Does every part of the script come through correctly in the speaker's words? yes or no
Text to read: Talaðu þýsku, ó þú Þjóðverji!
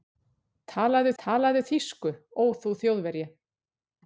no